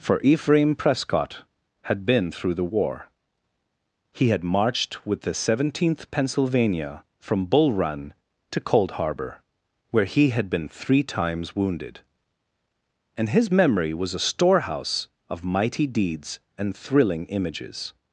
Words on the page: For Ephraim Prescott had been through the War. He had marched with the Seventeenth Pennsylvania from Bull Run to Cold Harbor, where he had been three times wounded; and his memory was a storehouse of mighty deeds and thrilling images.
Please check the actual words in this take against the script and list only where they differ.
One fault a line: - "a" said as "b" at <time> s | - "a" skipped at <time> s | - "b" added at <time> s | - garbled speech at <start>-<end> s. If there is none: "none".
none